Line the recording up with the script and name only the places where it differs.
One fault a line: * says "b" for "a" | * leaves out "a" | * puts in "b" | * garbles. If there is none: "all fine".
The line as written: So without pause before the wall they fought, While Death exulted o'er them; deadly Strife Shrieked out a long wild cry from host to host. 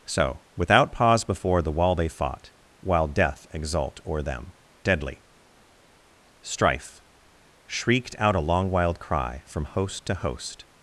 * says "exult" for "exulted"